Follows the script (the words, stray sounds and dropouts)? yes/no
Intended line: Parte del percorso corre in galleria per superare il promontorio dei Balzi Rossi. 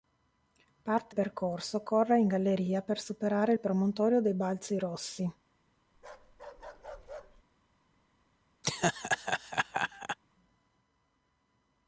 no